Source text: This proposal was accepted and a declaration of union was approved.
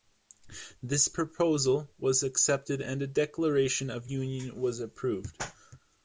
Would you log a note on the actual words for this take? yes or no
no